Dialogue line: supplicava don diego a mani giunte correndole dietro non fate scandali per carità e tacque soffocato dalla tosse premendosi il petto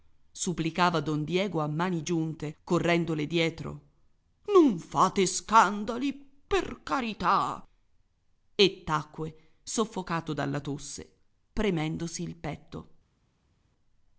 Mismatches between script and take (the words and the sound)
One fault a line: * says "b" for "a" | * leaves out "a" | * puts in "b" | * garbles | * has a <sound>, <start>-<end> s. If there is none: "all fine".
all fine